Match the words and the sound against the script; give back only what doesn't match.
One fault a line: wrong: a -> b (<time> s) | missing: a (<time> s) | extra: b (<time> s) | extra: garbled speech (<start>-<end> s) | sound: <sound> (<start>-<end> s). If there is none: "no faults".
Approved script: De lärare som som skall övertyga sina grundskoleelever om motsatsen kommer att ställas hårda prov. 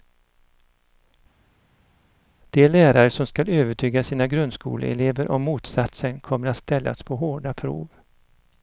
missing: som (3.3 s)
extra: på (7.0 s)